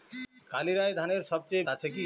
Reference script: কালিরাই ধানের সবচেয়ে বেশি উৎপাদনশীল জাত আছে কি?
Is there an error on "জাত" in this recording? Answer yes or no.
yes